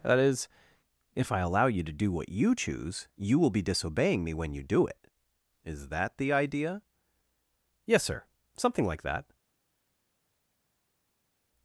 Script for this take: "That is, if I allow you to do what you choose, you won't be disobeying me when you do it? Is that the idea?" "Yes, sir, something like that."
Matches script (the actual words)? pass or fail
fail